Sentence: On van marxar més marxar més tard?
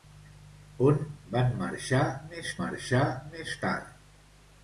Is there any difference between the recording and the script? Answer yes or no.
no